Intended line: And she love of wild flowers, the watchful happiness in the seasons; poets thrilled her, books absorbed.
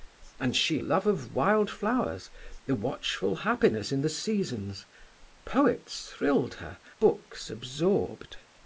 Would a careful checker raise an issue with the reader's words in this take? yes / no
no